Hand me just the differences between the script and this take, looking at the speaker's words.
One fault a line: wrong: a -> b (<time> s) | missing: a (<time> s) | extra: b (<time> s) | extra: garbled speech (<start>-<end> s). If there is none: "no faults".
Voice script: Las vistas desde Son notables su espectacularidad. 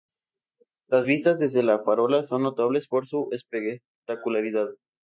extra: La Farola (1.6 s)
extra: por (2.9 s)